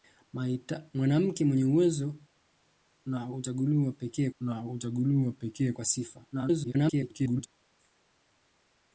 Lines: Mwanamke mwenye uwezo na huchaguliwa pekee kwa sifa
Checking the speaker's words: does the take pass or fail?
fail